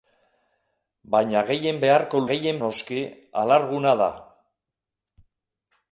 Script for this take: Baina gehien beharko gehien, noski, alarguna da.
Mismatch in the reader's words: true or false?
false